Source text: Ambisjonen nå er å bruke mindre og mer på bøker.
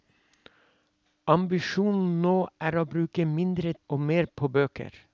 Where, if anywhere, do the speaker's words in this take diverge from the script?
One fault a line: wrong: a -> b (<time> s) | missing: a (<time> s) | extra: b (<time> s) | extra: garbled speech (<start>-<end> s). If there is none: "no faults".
no faults